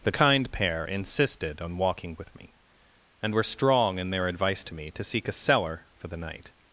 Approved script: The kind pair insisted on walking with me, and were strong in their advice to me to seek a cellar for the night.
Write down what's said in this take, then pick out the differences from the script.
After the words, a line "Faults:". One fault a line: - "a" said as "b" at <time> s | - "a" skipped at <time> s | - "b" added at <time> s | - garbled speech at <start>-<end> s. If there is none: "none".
The kind pair insisted on walking with me, and were strong in their advice to me to seek a cellar for the night.
Faults:
none